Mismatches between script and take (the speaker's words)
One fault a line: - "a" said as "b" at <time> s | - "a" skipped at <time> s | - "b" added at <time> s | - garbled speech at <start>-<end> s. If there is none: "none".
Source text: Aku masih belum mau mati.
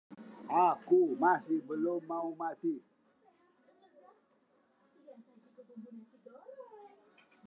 none